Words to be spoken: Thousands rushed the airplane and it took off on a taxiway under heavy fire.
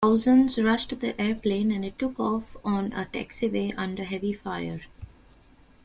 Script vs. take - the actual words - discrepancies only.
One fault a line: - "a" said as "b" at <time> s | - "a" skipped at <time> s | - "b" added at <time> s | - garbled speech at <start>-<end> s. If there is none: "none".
none